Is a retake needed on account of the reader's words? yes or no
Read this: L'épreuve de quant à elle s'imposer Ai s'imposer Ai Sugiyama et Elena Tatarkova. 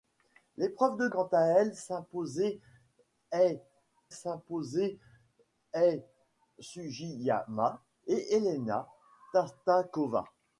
no